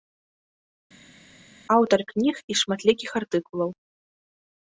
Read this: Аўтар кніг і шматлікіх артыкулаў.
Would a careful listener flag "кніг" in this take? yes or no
no